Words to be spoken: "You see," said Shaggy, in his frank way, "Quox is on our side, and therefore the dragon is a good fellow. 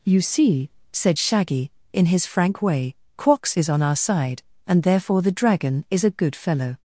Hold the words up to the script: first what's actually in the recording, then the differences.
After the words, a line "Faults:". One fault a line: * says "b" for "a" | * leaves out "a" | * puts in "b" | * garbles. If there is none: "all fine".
"You see," said Shaggy, in his frank way, "Quox is on our side, and therefore the dragon is a good fellow.
Faults:
all fine